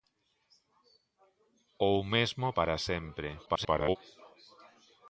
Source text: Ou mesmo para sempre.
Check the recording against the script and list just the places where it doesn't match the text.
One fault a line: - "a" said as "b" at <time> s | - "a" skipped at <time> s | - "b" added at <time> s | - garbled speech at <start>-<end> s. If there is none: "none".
- garbled speech at 3.5-4.0 s